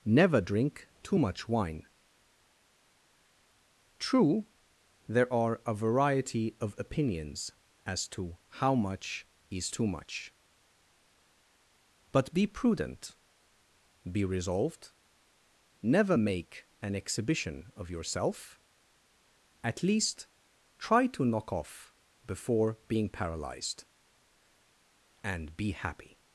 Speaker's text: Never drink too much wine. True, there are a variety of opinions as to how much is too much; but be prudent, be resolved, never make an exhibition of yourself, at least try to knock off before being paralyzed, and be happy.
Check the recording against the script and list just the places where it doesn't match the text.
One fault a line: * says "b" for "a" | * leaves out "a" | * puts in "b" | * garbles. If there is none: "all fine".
all fine